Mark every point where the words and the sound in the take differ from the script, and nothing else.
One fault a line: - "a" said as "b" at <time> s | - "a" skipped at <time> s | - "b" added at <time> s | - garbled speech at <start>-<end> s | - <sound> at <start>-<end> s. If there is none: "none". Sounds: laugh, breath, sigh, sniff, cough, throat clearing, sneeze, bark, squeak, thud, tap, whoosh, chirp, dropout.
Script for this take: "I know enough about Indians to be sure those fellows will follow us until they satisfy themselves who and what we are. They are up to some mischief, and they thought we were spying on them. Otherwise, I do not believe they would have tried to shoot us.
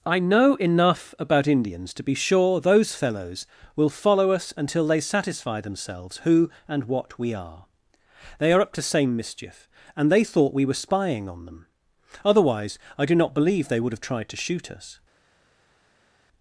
- "some" said as "same" at 8.8 s